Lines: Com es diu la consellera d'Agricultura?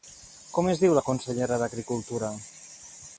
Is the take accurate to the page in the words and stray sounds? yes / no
yes